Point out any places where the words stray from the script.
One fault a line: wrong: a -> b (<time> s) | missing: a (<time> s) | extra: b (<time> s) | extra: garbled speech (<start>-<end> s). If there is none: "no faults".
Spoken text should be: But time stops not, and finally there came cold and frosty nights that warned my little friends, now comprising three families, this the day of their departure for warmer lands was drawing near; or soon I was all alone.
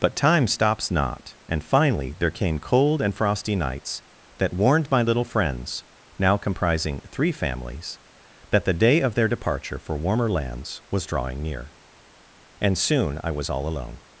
wrong: this -> that (8.5 s)
wrong: or -> and (12.6 s)